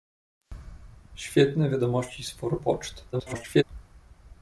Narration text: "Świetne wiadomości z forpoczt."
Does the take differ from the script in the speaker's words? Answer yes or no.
yes